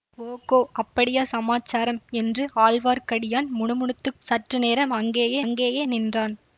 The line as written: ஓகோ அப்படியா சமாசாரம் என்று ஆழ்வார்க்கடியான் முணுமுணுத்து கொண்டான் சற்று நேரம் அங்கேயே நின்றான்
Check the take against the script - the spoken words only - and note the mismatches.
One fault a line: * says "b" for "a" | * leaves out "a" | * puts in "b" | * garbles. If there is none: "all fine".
* leaves out "கொண்டான்"
* puts in "அங்கேயே"